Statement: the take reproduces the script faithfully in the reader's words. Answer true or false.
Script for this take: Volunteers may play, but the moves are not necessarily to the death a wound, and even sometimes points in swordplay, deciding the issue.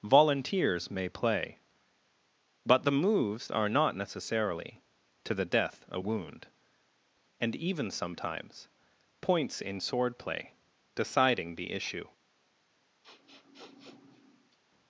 true